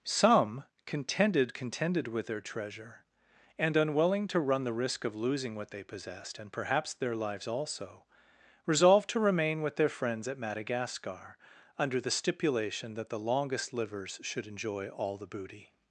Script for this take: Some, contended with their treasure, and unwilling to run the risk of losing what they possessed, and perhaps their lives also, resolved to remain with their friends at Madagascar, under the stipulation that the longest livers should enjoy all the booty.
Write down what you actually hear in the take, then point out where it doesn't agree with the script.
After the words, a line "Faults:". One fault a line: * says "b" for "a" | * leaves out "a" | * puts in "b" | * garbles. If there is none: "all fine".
Some, contended contended with their treasure, and unwilling to run the risk of losing what they possessed, and perhaps their lives also, resolved to remain with their friends at Madagascar, under the stipulation that the longest livers should enjoy all the booty.
Faults:
* puts in "contended"